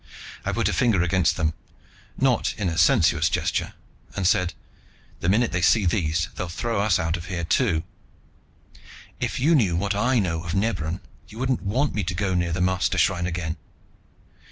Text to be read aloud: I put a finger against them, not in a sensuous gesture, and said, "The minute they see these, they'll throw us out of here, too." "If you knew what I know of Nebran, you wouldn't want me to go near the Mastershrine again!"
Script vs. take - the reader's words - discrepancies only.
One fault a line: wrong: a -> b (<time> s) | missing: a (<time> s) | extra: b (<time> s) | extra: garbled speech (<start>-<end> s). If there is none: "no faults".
no faults